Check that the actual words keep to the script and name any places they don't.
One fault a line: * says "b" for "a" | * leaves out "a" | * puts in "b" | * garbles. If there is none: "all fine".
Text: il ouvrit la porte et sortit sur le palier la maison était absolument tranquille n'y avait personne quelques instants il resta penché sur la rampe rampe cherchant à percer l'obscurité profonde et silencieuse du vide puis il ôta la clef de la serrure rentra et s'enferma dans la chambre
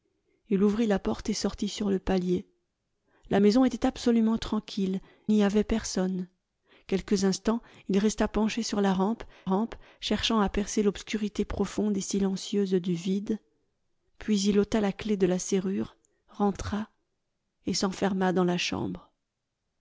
all fine